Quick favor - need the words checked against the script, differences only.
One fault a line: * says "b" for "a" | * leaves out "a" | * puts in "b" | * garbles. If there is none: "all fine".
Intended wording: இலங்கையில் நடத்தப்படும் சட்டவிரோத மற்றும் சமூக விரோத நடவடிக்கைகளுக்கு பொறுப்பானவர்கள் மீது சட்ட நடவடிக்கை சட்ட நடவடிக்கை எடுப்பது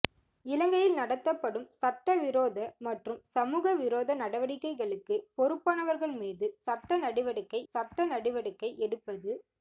all fine